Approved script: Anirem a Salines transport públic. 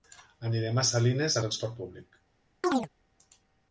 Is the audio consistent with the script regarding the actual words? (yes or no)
yes